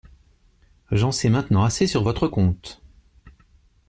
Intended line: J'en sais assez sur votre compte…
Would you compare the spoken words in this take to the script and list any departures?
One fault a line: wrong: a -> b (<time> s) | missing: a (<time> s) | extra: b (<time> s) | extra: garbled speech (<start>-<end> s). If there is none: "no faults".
extra: maintenant (1.3 s)